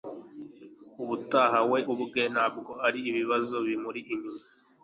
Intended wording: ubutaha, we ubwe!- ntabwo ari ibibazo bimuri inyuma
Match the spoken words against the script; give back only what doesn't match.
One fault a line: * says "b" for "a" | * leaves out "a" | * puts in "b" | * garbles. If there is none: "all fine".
all fine